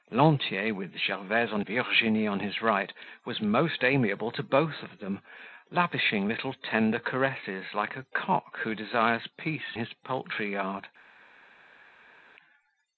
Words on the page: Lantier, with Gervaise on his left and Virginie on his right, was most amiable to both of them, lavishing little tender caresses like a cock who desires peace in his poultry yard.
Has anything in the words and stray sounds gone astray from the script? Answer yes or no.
yes